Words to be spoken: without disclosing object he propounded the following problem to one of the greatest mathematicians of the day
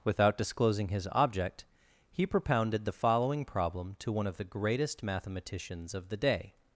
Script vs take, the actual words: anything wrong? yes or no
yes